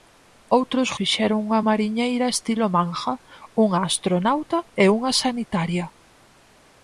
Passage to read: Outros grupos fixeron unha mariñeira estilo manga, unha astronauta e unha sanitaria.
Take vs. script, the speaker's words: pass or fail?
fail